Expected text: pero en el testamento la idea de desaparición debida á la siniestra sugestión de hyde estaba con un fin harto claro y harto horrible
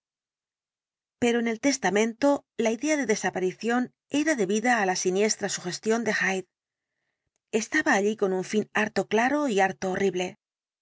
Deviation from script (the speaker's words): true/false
true